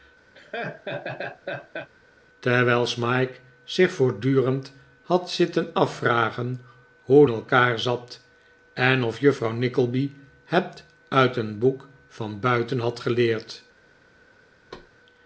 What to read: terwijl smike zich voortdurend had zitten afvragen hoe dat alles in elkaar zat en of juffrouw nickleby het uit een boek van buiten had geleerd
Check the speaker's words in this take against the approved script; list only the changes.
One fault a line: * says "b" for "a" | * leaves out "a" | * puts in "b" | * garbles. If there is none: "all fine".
* leaves out "dat alles in"